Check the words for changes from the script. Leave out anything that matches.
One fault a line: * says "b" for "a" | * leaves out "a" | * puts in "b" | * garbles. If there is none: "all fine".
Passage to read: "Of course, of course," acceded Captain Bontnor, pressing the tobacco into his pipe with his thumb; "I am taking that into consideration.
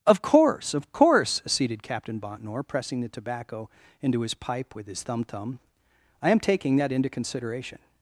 * puts in "thumb"